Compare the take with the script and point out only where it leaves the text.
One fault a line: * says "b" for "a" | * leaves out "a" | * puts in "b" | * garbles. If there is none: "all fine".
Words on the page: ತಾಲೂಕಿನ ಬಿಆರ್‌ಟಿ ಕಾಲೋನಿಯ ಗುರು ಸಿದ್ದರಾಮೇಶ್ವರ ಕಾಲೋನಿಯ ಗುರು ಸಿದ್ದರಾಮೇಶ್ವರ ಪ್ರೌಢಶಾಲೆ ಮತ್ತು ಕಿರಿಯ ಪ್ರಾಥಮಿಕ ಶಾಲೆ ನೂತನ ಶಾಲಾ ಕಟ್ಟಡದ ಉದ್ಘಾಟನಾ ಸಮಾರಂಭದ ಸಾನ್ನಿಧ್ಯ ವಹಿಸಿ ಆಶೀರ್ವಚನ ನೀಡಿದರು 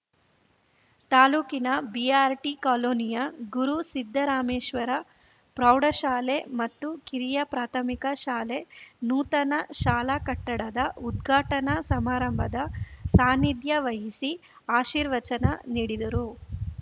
* leaves out "ಕಾಲೋನಿಯ ಗುರು ಸಿದ್ದರಾಮೇಶ್ವರ"